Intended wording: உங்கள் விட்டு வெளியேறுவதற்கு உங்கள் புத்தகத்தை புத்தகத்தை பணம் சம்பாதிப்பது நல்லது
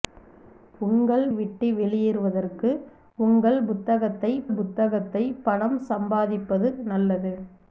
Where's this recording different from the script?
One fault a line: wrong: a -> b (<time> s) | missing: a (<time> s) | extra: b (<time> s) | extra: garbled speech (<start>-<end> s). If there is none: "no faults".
no faults